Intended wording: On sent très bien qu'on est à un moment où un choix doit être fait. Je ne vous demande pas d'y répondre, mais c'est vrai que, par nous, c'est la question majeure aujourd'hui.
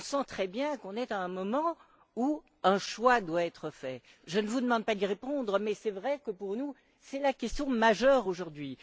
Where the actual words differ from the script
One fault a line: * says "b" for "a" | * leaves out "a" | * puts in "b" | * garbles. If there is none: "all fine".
* says "pour" for "par"